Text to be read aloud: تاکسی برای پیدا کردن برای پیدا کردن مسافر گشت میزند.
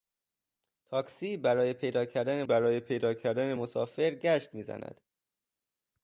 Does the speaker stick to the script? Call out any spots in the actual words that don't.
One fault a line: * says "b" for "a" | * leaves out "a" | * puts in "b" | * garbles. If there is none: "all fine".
all fine